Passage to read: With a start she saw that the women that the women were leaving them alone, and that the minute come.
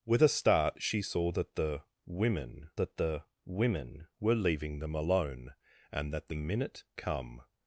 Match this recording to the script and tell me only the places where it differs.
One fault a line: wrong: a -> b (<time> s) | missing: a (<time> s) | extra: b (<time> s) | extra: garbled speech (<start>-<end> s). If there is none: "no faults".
no faults